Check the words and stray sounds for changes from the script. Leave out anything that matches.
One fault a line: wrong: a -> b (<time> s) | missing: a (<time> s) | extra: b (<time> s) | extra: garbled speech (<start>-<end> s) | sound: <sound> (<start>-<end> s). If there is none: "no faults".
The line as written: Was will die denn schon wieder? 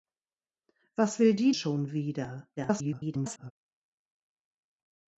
missing: denn (1.5 s)
extra: garbled speech (2.6-3.5 s)